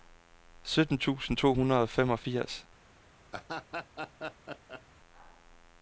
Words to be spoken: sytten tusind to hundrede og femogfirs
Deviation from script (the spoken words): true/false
false